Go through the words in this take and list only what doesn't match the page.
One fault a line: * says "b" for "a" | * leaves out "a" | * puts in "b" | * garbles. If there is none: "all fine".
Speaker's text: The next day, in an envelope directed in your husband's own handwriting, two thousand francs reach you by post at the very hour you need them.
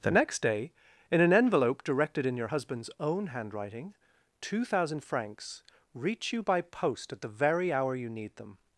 all fine